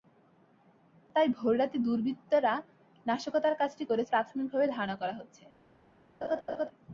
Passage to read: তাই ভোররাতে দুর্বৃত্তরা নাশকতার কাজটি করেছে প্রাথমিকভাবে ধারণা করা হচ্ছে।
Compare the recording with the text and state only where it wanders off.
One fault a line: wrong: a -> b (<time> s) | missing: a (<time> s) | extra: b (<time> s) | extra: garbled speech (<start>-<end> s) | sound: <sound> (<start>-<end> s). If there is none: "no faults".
sound: laugh (6.2-6.7 s)